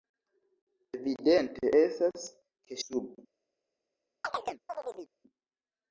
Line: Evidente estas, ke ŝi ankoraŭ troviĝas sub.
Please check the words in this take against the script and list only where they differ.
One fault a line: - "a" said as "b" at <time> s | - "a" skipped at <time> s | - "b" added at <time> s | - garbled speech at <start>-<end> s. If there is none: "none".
- "ŝi ankoraŭ troviĝas" skipped at 2.8 s